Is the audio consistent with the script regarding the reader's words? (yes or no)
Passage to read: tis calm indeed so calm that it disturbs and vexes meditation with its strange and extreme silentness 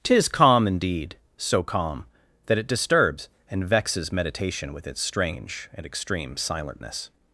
yes